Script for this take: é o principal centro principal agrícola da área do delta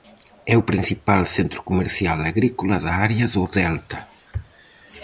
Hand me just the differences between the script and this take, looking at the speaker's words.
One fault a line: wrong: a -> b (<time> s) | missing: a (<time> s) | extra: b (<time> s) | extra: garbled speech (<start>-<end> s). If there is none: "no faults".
wrong: principal -> comercial (1.7 s)